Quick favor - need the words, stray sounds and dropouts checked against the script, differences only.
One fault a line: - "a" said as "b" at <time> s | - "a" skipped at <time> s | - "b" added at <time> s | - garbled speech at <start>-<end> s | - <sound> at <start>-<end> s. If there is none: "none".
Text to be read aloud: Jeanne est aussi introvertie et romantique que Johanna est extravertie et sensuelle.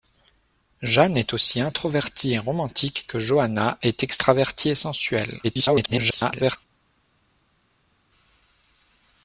- garbled speech at 5.4-6.6 s